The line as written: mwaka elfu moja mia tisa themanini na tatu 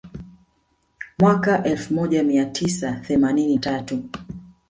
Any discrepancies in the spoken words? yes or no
yes